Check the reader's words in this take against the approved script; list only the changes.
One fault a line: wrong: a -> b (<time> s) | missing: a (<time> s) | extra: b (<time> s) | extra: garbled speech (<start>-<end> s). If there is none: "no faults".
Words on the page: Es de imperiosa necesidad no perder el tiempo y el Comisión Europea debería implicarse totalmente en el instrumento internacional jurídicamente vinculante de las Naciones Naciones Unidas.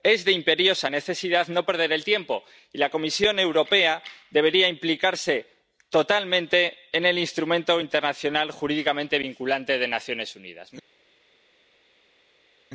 wrong: el -> la (2.8 s)
missing: Naciones (10.4 s)